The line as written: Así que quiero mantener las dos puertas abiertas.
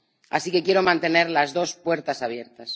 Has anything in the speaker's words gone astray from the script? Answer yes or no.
no